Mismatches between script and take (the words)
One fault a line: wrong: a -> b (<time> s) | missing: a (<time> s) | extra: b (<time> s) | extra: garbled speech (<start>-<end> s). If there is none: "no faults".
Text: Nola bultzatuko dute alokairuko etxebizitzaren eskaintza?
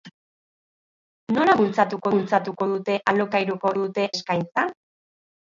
extra: bultzatuko (2.1 s)
wrong: etxebizitzaren -> dute (3.8 s)